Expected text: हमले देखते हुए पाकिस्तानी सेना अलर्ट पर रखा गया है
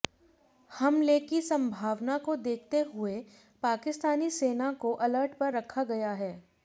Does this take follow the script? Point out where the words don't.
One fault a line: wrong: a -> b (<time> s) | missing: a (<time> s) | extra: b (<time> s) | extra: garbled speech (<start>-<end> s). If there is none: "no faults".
extra: की संभावना को (1.2 s)
extra: को (4.7 s)